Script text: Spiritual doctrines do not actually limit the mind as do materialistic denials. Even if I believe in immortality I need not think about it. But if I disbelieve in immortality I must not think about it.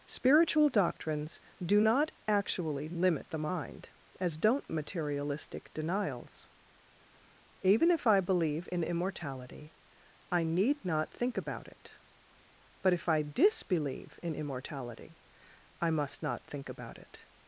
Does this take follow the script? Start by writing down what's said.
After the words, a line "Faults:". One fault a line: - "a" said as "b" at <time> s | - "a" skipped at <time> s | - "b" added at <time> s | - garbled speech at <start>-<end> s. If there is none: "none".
Spiritual doctrines do not actually limit the mind as don't materialistic denials. Even if I believe in immortality I need not think about it. But if I disbelieve in immortality I must not think about it.
Faults:
- "do" said as "don't" at 4.4 s